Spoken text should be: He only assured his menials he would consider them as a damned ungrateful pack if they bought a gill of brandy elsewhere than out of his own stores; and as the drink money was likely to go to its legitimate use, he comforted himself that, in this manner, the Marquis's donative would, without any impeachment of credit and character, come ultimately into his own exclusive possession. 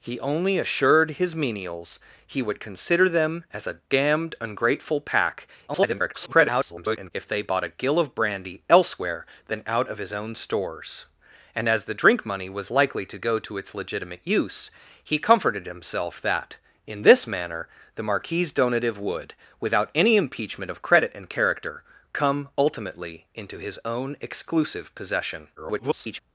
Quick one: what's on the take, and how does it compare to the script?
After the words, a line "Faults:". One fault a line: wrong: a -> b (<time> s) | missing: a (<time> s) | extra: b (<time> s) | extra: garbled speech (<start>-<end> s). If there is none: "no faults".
He only assured his menials he would consider them as a damned ungrateful pack [garbled] if they bought a gill of brandy elsewhere than out of his own stores; and as the drink money was likely to go to its legitimate use, he comforted himself that, in this manner, the Marquis's donative would, without any impeachment of credit and character, come ultimately into his own exclusive possession. [garbled]
Faults:
extra: garbled speech (5.7-7.1 s)
extra: garbled speech (25.6-26.2 s)